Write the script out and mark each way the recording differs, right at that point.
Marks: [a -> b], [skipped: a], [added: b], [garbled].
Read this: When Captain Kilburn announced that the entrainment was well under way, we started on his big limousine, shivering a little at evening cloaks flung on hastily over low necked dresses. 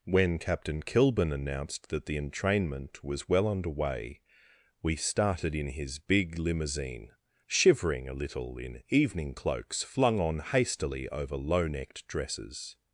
When Captain Kilburn announced that the entrainment was well under way, we started [on -> in] his big limousine, shivering a little [at -> in] evening cloaks flung on hastily over low necked dresses.